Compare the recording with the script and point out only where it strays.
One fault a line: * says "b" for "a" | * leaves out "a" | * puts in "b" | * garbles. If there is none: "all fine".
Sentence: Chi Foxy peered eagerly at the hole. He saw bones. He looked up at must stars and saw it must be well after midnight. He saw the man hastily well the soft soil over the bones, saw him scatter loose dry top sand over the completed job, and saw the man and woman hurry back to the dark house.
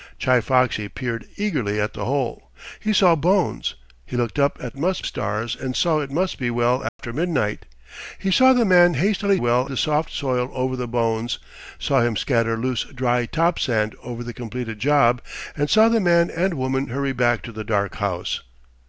all fine